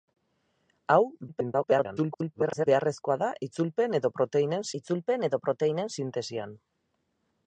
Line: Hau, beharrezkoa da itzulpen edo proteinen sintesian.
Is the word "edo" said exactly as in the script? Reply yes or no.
yes